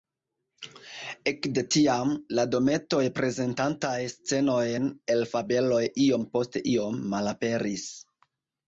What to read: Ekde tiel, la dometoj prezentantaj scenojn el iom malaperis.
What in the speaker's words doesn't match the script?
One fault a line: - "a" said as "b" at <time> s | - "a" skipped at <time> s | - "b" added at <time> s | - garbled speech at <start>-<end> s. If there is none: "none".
- "tiel" said as "tiam" at 1.7 s
- "fabeloj iom post" added at 5.3 s